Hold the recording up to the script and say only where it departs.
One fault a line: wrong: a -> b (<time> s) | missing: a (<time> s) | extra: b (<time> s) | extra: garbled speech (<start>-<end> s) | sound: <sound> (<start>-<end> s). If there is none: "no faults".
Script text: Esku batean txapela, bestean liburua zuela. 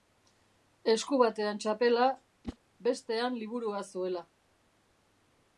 sound: whoosh (2.4-2.6 s)